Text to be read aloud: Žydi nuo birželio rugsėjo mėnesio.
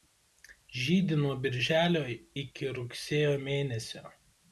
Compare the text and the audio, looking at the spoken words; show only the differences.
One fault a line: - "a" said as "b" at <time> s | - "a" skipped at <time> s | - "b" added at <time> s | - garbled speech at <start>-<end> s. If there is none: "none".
- "iki" added at 2.4 s